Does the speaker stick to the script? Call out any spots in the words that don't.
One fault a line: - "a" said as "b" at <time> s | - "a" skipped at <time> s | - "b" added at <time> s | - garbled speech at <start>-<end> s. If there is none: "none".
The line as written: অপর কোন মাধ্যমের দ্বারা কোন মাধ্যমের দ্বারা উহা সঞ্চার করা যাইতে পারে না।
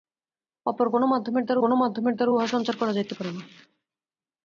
none